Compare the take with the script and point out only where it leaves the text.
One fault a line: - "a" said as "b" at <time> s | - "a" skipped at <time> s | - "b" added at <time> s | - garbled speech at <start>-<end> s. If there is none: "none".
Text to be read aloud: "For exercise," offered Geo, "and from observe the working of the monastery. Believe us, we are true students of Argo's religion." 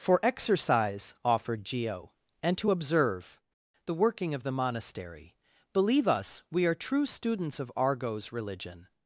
- "from" said as "to" at 2.6 s